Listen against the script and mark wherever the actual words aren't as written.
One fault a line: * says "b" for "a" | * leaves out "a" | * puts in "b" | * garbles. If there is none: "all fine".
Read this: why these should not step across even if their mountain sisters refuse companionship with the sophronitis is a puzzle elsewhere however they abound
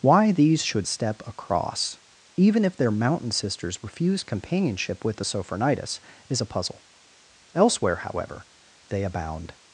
* leaves out "not"